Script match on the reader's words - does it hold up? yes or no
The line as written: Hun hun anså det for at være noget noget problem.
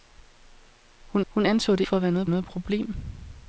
yes